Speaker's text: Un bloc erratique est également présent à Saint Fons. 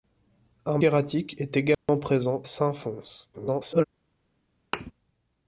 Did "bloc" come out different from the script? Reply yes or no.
yes